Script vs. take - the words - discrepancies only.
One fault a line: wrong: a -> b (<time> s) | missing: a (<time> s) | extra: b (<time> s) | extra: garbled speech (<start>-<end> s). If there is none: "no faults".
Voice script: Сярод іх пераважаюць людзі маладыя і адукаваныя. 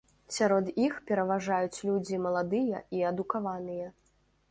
no faults